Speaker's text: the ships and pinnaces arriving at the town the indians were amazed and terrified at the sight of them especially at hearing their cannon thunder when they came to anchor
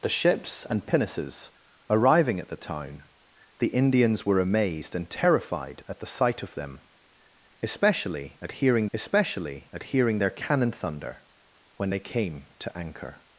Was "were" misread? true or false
false